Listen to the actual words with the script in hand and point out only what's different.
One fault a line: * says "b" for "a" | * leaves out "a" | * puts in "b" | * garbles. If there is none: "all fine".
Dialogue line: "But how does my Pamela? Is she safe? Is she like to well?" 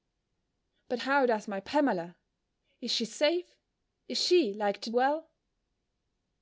all fine